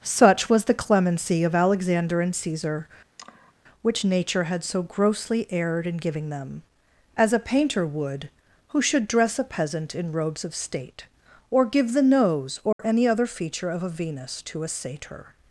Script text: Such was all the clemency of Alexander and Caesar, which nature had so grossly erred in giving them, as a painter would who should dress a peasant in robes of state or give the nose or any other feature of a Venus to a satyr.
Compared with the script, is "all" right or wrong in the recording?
wrong